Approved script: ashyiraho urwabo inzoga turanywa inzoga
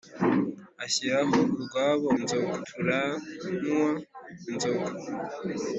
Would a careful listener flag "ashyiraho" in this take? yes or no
no